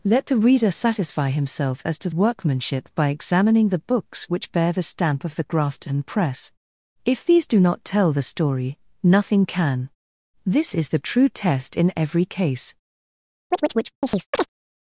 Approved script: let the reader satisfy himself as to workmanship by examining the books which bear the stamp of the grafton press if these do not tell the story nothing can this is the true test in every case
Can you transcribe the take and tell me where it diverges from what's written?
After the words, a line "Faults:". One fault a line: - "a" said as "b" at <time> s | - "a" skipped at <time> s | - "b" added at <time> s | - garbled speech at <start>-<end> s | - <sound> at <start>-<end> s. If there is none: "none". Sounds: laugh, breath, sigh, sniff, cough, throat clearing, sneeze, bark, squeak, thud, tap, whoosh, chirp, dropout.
let the reader satisfy himself as to workmanship by examining the books which bear the stamp of the grafton press if these do not tell the story nothing can this is the true test in every case
Faults:
- chirp at 13.5-14.5 s